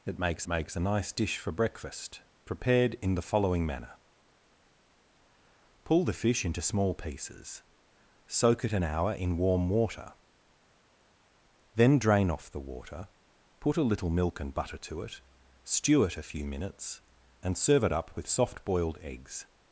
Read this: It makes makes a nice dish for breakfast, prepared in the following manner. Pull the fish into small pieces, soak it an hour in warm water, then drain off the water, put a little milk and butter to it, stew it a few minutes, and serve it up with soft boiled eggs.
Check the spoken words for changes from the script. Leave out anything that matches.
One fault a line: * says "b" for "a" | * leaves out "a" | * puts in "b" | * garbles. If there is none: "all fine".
all fine